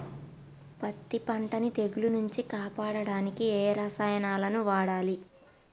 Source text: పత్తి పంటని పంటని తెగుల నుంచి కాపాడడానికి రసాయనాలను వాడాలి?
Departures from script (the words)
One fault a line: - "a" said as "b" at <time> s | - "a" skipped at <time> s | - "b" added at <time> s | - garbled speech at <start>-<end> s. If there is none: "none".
- "పంటని" skipped at 1.7 s
- "ఏ" added at 3.5 s